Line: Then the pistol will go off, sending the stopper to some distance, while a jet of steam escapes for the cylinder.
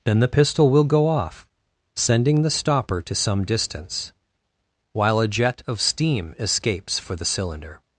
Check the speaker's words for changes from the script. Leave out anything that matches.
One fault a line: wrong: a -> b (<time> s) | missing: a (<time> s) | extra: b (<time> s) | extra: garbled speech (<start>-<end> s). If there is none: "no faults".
no faults